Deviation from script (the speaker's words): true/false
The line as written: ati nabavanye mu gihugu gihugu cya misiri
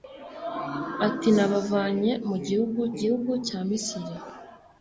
false